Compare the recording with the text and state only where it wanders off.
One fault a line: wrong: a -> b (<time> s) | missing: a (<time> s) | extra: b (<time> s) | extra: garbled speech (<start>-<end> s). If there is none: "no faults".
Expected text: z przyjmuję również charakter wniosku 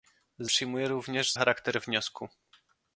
no faults